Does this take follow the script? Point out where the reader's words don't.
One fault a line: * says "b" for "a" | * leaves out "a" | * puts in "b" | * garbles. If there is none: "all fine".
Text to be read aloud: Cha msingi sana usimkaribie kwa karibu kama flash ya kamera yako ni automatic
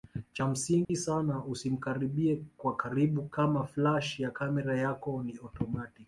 all fine